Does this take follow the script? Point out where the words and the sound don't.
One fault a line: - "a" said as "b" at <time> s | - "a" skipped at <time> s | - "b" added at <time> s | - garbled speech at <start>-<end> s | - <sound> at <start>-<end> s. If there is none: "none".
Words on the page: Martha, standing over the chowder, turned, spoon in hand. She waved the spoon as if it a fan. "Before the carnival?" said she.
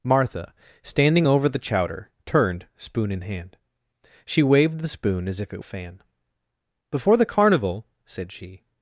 none